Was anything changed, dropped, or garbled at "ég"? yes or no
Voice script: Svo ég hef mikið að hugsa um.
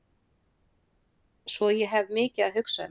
no